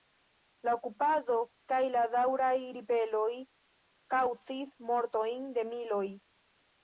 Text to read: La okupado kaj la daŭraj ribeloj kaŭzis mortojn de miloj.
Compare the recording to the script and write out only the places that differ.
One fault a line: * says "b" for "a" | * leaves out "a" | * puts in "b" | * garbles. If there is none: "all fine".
all fine